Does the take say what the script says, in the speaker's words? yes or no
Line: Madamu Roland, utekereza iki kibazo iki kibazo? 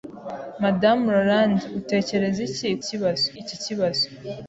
yes